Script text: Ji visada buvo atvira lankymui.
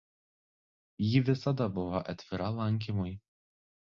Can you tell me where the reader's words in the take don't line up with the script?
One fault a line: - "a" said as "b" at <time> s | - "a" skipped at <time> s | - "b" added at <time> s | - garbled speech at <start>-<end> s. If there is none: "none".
none